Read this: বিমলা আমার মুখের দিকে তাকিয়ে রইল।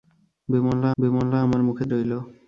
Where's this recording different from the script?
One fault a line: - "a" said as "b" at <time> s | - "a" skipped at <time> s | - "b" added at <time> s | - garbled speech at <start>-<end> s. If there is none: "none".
- "বিমলা" added at 1.0 s
- "দিকে তাকিয়ে" skipped at 1.9 s